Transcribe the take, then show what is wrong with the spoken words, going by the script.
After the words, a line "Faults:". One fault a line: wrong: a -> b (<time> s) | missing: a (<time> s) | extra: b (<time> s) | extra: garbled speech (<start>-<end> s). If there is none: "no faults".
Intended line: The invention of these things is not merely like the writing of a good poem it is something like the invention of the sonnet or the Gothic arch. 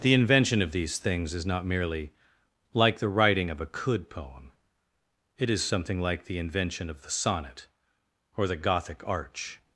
The invention of these things is not merely like the writing of a could poem it is something like the invention of the sonnet or the Gothic arch.
Faults:
wrong: good -> could (3.6 s)